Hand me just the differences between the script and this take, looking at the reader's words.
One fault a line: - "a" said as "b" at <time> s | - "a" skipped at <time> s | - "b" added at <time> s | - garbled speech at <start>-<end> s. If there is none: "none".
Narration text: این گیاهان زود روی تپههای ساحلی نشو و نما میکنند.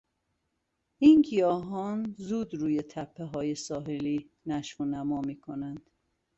none